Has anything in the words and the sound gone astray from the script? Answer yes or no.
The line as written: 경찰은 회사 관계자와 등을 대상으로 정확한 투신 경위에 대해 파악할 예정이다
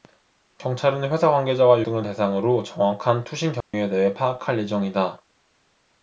yes